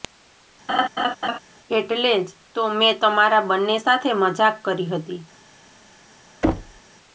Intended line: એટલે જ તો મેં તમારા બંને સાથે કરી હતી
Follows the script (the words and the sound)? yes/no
no